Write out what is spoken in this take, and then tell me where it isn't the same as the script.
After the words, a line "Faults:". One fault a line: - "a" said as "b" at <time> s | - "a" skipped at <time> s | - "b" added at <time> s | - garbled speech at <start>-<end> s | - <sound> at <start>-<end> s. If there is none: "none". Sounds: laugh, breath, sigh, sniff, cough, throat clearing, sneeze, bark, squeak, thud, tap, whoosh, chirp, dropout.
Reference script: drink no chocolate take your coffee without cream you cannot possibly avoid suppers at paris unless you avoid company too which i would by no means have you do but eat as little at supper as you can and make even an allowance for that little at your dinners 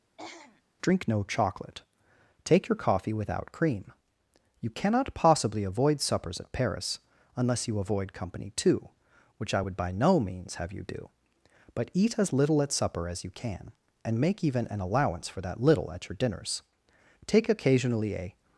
drink no chocolate take your coffee without cream you cannot possibly avoid suppers at paris unless you avoid company too which i would by no means have you do but eat as little at supper as you can and make even an allowance for that little at your dinners take occasionally a
Faults:
- throat clearing at 0.2-0.6 s
- "take occasionally a" added at 17.3 s